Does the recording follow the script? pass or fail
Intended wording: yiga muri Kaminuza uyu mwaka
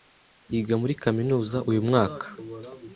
pass